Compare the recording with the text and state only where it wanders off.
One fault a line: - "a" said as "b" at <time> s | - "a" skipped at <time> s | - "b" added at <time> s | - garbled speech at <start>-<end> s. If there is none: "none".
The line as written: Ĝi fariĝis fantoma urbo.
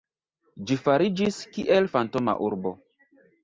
- "kiel" added at 1.6 s